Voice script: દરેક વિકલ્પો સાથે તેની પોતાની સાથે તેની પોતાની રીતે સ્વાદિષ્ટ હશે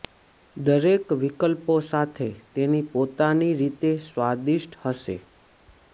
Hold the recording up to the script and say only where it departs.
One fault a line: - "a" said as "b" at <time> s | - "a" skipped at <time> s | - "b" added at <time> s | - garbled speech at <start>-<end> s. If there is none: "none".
- "સાથે તેની પોતાની" skipped at 3.5 s